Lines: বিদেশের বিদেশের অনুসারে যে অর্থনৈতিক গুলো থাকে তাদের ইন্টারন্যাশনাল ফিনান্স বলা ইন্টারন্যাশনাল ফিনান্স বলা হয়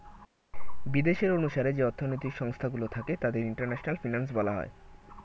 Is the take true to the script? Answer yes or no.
no